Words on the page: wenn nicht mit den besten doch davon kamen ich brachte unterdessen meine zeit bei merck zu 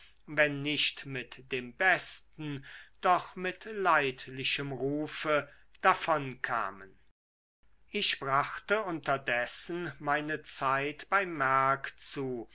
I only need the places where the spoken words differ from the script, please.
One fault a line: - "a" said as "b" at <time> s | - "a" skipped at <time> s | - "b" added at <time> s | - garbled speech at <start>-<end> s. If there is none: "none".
- "den" said as "dem" at 1.5 s
- "mit leidlichem rufe" added at 3.4 s